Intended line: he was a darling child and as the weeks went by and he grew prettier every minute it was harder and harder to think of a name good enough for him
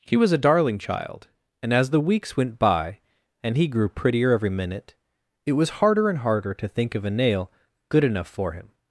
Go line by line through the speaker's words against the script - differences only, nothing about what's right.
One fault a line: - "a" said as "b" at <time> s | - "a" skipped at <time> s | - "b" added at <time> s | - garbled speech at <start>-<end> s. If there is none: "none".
- "name" said as "nail" at 7.1 s